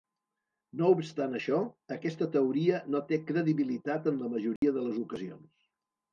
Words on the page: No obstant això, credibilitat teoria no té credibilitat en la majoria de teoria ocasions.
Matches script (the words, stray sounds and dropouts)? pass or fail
fail